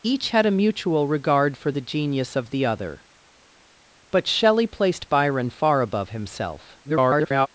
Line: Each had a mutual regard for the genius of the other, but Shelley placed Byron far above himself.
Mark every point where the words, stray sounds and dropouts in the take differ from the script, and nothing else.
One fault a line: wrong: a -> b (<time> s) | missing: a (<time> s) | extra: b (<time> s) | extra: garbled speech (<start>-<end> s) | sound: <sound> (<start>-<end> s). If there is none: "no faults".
extra: garbled speech (6.8-7.5 s)